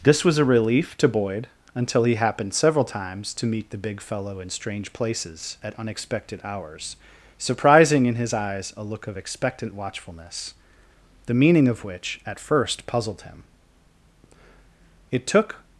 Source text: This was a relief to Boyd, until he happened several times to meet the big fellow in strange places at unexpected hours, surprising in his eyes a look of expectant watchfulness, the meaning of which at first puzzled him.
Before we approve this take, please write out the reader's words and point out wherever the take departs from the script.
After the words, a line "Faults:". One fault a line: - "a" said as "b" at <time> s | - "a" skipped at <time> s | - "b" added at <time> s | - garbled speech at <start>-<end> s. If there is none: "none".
This was a relief to Boyd, until he happened several times to meet the big fellow in strange places at unexpected hours, surprising in his eyes a look of expectant watchfulness, the meaning of which at first puzzled him. It took
Faults:
- "It took" added at 15.1 s